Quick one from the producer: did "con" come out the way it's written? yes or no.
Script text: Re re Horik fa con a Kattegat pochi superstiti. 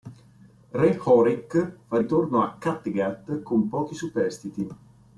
no